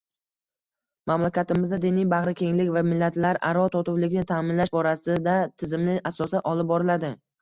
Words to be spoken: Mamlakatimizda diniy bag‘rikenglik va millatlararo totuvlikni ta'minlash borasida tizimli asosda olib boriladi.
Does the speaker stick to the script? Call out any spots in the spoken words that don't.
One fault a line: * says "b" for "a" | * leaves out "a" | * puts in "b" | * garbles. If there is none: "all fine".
all fine